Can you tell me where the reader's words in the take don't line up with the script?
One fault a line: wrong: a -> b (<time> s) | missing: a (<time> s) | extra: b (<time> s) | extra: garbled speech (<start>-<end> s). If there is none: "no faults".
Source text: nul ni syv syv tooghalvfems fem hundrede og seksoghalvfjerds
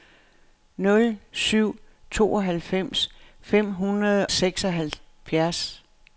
missing: ni (1.2 s)
missing: syv (1.8 s)
missing: og (4.3 s)